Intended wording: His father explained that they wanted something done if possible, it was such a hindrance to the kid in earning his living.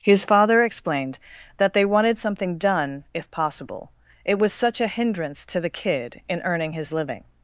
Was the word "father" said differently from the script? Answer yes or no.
no